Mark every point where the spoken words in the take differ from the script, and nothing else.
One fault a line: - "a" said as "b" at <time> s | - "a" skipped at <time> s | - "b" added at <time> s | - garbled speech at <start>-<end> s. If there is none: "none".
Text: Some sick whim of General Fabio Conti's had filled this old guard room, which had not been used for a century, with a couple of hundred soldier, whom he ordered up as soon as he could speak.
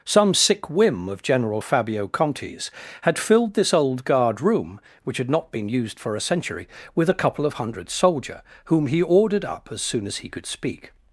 none